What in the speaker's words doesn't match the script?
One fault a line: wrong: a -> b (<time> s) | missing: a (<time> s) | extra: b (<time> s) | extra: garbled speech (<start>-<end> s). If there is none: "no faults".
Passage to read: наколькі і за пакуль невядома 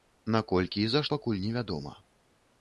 no faults